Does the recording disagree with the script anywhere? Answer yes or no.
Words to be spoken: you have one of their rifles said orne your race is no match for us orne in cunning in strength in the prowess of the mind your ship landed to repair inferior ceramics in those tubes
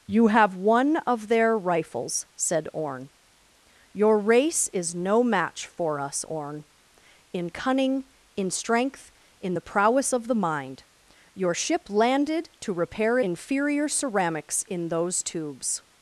no